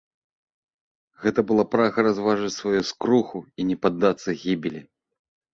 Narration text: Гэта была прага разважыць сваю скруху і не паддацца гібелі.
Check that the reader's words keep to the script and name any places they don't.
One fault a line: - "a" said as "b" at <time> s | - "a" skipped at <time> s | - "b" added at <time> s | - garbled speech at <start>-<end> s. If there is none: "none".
none